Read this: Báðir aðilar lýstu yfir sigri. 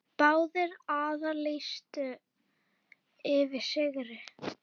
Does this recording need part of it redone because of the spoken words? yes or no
no